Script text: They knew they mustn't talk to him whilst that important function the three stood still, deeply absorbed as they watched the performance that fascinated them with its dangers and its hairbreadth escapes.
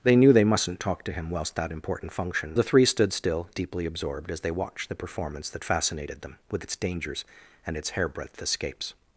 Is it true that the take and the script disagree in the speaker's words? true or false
false